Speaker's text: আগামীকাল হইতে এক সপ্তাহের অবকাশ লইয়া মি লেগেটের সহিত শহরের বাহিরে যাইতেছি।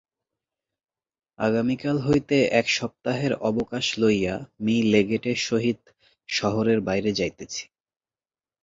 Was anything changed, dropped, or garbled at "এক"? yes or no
no